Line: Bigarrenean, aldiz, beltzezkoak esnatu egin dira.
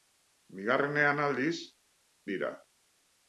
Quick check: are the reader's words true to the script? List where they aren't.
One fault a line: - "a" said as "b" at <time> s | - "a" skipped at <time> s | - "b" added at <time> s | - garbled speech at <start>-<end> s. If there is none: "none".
- "beltzezkoak esnatu egin" skipped at 1.5 s